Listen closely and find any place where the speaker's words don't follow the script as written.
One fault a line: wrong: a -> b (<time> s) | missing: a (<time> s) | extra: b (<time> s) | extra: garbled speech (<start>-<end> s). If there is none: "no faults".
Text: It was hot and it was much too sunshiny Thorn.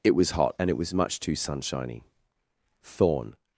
no faults